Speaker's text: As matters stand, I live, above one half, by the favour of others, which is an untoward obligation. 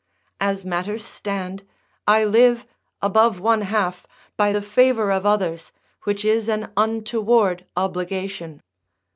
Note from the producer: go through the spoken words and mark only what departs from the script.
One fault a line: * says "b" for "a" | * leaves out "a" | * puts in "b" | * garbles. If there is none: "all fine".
all fine